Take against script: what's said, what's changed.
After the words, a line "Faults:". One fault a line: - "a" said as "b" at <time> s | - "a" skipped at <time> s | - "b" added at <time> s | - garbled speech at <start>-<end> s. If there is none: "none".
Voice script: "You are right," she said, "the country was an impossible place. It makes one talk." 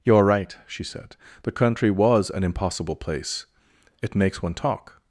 "You are right," she said, "the country was an impossible place. It makes one talk."
Faults:
none